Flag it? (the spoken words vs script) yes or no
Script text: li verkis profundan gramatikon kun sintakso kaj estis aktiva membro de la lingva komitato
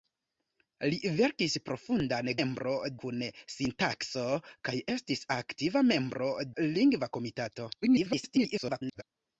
yes